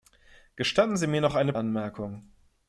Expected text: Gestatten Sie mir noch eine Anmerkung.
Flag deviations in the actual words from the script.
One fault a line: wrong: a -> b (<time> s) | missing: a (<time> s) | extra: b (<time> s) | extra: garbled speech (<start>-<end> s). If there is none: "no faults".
no faults